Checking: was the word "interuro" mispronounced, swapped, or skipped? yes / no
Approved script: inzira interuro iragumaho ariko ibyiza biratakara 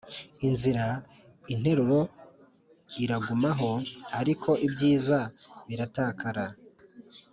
no